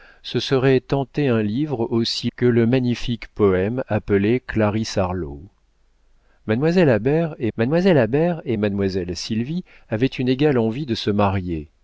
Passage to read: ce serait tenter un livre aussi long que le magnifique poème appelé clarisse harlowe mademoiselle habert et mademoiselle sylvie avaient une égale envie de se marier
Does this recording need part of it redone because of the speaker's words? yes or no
yes